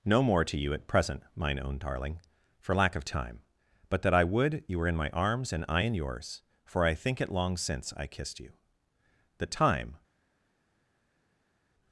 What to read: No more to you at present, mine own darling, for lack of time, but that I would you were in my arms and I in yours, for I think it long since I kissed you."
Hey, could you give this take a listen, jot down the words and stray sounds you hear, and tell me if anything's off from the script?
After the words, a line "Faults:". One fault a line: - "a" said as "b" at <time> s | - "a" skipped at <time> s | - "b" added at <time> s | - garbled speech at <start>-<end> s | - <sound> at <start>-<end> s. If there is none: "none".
No more to you at present, mine own darling, for lack of time, but that I would you were in my arms and I in yours, for I think it long since I kissed you." The time
Faults:
- "The time" added at 9.4 s